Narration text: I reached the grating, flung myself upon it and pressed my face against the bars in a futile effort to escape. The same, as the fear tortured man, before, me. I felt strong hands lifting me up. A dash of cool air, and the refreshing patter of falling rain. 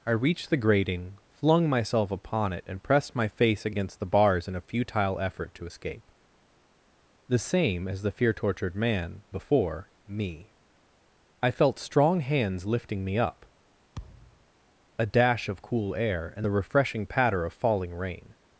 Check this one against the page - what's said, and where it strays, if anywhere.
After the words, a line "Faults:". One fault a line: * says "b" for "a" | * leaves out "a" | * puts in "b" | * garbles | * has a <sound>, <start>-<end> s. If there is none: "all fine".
I reached the grating, flung myself upon it and pressed my face against the bars in a futile effort to escape. The same, as the fear tortured man, before, me. I felt strong hands lifting me up. A dash of cool air, and the refreshing patter of falling rain.
Faults:
* has a thud, 14.0-14.5 s